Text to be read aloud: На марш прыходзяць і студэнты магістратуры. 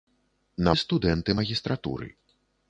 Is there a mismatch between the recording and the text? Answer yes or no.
yes